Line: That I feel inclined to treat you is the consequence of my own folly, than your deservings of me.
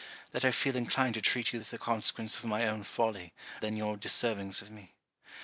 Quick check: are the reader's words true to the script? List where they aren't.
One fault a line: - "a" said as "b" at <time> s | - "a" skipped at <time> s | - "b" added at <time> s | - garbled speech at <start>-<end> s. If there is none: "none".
none